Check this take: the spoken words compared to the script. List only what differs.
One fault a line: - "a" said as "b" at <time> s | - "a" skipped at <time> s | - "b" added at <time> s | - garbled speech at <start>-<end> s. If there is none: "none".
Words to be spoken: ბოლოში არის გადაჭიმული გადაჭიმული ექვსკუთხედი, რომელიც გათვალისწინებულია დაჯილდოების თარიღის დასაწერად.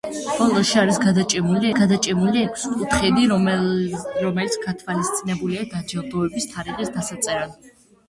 none